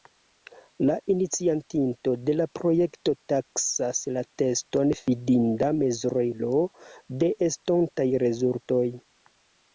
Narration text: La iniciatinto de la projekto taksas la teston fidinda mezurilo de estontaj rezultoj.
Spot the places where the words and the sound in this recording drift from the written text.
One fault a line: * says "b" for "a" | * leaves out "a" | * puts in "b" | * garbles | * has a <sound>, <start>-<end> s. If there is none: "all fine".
all fine